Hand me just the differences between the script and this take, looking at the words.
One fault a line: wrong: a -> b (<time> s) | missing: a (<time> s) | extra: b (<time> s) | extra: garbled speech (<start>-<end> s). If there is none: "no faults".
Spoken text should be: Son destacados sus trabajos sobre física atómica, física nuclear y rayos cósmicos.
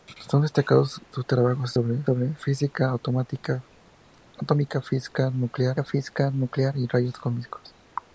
extra: sobre (2.0 s)
extra: física nuclear (5.8 s)